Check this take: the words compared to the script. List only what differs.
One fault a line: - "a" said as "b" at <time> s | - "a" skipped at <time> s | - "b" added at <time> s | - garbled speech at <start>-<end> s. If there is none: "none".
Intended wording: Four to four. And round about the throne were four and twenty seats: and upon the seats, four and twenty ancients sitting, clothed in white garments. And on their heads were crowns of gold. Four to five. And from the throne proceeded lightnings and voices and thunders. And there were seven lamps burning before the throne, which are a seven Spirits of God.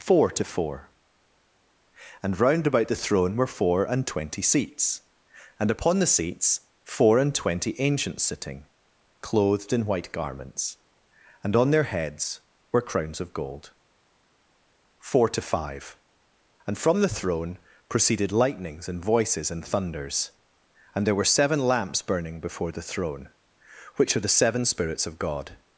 - "a" said as "the" at 24.2 s